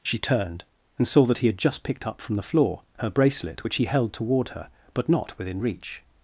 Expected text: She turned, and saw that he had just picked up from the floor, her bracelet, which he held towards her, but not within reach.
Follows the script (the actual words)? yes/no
no